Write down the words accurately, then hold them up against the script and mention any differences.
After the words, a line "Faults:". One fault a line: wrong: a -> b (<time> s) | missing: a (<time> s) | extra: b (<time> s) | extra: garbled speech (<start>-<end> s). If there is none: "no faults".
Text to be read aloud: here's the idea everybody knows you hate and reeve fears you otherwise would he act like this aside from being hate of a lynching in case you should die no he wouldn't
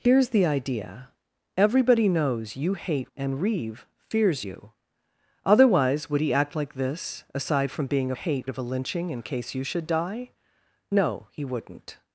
here's the idea everybody knows you hate and reeve fears you otherwise would he act like this aside from being hate of a lynching in case you should die no he wouldn't
Faults:
no faults